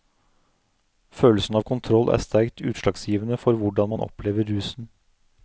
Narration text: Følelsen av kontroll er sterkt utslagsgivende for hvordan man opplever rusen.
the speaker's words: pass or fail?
pass